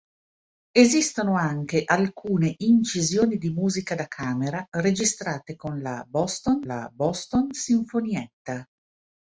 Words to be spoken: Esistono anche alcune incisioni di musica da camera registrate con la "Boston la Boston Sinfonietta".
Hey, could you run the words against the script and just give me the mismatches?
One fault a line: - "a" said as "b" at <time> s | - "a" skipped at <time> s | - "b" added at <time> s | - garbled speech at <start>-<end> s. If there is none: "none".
none